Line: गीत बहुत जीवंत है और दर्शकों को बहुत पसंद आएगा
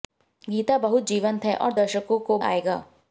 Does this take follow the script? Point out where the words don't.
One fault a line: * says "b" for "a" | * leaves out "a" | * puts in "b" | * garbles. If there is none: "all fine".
* leaves out "बहुत पसंद"